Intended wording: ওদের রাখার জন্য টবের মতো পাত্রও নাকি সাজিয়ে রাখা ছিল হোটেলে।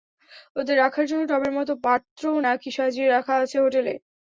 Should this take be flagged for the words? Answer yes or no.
yes